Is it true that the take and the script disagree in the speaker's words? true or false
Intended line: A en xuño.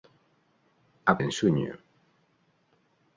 false